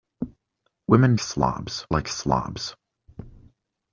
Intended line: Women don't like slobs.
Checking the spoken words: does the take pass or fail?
fail